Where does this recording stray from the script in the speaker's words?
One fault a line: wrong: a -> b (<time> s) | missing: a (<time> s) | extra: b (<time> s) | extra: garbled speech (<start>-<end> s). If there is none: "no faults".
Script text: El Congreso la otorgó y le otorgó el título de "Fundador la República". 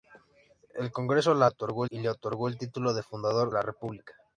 no faults